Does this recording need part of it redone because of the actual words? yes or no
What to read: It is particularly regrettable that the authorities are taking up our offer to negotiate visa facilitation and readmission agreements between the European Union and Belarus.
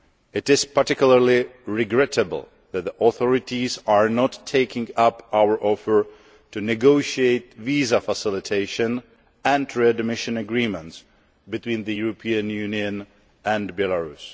yes